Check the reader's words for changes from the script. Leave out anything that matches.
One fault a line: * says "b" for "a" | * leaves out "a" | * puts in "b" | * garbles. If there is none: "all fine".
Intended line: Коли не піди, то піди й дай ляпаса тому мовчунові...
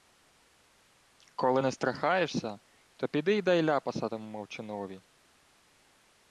* says "страхаєшся" for "піди"